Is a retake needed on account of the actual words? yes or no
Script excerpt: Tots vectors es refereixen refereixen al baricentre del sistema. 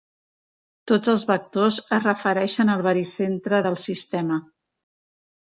yes